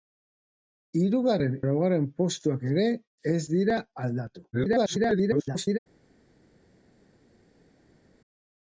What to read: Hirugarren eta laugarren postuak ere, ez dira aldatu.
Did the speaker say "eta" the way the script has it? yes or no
no